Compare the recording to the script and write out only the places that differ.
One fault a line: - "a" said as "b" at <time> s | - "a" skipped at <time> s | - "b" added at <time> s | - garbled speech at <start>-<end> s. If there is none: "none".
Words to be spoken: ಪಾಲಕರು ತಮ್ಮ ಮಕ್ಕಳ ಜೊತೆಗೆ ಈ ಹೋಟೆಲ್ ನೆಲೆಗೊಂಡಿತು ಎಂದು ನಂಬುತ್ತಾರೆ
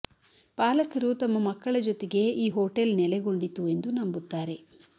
none